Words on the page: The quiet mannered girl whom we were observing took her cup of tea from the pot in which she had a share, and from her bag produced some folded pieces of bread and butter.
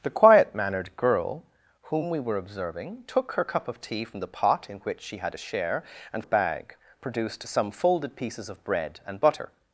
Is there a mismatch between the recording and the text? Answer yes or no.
yes